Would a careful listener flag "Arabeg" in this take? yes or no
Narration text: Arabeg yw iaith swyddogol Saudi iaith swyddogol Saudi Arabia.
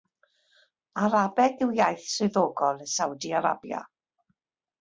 no